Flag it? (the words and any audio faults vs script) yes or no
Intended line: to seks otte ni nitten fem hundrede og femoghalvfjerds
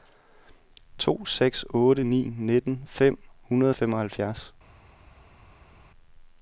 no